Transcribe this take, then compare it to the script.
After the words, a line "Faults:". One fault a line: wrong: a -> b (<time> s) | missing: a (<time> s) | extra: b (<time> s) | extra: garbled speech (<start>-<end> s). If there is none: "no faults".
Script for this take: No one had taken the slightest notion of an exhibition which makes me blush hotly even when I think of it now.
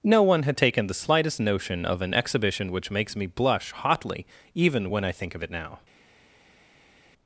No one had taken the slightest notion of an exhibition which makes me blush hotly even when I think of it now.
Faults:
no faults